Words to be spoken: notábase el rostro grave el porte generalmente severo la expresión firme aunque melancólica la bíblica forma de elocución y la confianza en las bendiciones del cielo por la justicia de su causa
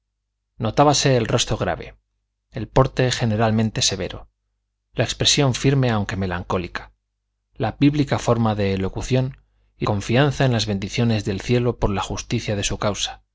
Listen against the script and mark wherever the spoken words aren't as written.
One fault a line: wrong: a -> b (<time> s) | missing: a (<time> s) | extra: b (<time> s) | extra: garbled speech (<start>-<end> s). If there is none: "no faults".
missing: la (9.8 s)